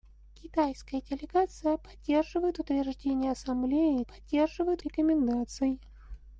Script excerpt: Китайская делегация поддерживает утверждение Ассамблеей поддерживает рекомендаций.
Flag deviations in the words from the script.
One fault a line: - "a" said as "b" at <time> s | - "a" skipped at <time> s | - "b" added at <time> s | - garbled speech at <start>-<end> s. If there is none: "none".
none